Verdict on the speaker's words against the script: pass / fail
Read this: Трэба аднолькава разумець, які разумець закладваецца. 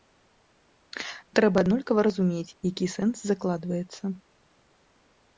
fail